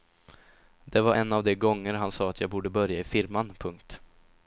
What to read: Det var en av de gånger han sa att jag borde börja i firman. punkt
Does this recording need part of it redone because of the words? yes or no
no